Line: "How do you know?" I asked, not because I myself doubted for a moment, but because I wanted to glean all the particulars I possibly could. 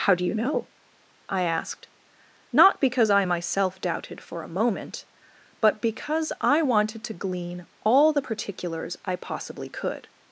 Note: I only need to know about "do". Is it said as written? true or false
true